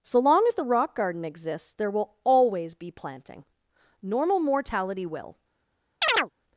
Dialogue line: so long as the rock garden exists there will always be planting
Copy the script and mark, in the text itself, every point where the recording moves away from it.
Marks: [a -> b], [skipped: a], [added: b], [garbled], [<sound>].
so long as the rock garden exists there will always be planting [added: normal mortality will] [chirp]